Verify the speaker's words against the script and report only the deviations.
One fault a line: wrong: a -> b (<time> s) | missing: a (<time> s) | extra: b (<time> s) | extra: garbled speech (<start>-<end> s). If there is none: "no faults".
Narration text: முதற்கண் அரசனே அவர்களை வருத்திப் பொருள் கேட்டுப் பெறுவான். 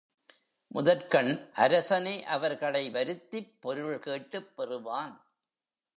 no faults